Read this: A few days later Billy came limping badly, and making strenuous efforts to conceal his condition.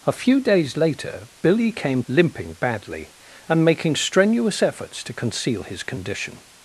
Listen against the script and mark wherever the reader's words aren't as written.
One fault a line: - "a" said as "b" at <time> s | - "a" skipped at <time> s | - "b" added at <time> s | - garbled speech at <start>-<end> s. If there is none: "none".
none